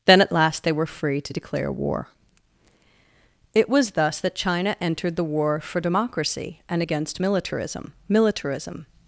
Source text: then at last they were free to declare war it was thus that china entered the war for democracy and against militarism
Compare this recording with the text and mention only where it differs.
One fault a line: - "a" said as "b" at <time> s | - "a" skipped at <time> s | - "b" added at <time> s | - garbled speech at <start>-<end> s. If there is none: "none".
- "militarism" added at 8.1 s